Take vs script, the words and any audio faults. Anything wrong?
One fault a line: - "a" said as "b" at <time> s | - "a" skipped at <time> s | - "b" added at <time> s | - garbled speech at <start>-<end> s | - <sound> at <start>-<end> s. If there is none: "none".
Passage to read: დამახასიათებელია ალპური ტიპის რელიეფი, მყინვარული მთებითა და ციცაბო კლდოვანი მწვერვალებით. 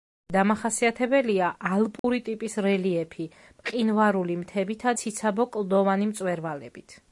- dropout at 2.0-2.0 s
- "და" skipped at 5.0 s